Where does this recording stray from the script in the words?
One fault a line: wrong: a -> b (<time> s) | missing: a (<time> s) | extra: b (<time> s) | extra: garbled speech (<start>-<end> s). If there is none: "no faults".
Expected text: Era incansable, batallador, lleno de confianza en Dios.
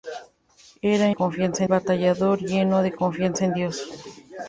wrong: incansable -> confianza (1.1 s)